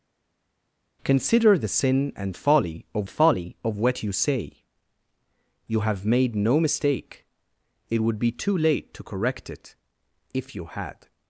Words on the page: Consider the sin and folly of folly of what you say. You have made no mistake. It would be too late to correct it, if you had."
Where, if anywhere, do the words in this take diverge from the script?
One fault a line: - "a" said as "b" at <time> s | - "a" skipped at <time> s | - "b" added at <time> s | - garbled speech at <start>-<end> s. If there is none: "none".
none